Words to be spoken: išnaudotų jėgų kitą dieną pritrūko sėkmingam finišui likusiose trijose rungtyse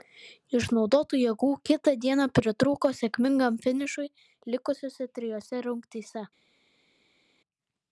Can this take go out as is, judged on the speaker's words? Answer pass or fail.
pass